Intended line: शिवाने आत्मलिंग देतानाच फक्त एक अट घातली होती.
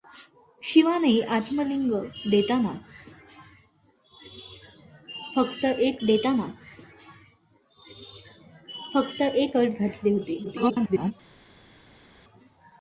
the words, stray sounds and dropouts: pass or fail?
fail